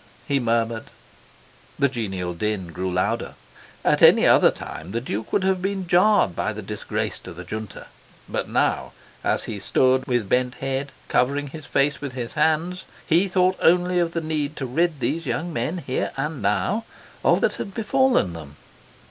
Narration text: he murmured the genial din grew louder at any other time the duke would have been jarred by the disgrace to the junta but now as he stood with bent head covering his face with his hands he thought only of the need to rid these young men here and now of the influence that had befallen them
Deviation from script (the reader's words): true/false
true